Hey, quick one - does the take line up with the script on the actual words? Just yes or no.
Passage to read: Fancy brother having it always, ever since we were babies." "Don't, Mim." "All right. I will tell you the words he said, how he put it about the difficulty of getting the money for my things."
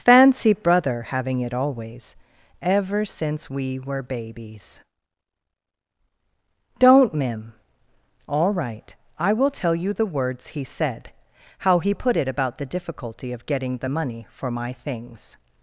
yes